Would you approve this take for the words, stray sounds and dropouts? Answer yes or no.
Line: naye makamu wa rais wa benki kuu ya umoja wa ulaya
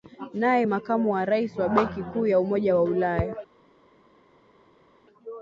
yes